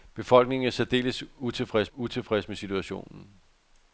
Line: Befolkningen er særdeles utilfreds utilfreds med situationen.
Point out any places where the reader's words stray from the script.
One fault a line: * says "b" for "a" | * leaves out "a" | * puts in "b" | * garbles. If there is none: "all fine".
all fine